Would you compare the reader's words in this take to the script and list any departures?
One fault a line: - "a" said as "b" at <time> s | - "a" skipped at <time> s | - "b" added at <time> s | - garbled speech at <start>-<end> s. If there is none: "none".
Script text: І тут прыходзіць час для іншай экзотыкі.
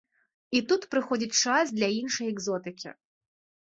none